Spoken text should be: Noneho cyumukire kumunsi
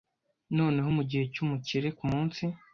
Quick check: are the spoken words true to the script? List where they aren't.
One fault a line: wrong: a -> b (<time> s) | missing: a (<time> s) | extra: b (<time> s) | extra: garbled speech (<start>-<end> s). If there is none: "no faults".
extra: mugihe (1.0 s)